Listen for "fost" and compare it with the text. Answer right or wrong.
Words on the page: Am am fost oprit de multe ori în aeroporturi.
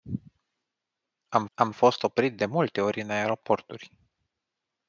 right